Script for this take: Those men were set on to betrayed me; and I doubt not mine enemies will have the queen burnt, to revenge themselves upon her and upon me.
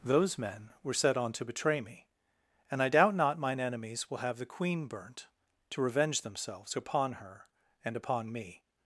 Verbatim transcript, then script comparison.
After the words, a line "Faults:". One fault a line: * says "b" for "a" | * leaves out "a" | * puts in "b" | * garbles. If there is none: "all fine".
Those men were set on to betray me; and I doubt not mine enemies will have the queen burnt, to revenge themselves upon her and upon me.
Faults:
* says "betray" for "betrayed"